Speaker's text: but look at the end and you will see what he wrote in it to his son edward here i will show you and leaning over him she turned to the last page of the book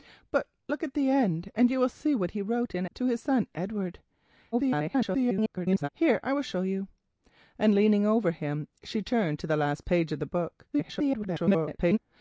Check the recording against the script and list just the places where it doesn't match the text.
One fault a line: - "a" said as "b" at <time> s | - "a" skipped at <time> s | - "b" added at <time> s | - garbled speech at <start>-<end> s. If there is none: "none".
- "it" skipped at 2.9 s
- garbled speech at 4.5-5.9 s
- garbled speech at 10.7-12.0 s